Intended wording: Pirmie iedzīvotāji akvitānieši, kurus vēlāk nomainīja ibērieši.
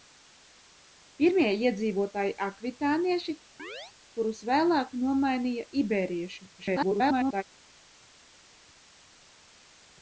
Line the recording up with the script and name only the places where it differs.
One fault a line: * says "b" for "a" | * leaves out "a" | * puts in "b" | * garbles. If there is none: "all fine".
* garbles